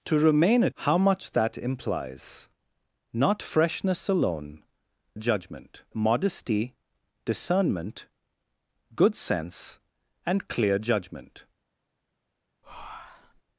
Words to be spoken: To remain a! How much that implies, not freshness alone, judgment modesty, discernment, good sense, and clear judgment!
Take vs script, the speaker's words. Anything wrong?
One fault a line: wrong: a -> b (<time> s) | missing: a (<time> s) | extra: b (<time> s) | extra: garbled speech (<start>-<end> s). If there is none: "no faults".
no faults